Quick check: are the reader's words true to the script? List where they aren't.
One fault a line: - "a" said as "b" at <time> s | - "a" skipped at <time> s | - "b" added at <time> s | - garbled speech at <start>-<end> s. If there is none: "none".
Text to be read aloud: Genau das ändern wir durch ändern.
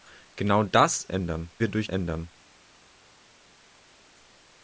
none